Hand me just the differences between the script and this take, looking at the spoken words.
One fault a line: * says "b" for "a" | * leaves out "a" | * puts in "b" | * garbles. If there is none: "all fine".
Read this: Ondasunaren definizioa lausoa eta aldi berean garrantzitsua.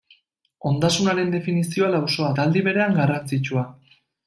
all fine